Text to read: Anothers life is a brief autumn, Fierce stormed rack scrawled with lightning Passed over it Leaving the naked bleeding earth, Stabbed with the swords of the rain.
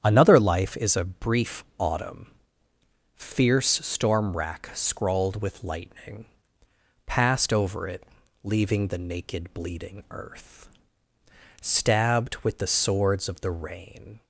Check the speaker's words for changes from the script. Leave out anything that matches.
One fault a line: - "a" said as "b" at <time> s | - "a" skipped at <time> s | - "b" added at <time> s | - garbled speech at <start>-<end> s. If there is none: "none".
- "Anothers" said as "Another" at 0.0 s
- "stormed" said as "storm" at 3.8 s